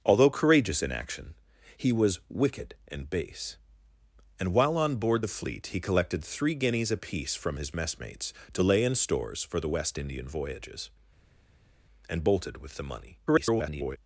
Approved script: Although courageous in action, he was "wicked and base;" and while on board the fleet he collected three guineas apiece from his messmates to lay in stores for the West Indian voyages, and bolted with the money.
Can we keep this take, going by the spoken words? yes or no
no